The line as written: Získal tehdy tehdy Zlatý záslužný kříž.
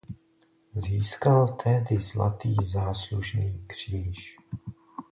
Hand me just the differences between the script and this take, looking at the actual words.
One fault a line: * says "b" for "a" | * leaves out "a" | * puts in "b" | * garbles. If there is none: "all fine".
* leaves out "tehdy"